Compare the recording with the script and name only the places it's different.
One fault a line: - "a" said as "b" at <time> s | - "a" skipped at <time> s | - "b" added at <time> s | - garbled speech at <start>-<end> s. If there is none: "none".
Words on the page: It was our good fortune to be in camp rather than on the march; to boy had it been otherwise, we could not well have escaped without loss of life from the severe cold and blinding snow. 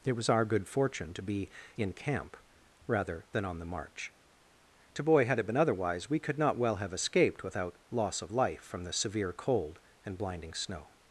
none